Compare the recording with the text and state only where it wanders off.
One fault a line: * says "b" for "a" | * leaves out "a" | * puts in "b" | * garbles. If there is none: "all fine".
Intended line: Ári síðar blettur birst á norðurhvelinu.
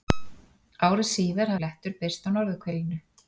all fine